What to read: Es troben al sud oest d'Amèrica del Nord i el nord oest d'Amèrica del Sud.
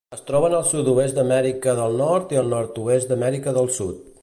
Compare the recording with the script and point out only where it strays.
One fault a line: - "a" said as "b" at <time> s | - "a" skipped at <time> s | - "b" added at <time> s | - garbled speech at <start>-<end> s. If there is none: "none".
none